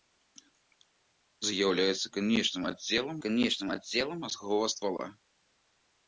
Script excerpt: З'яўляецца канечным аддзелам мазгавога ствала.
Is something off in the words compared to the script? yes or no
yes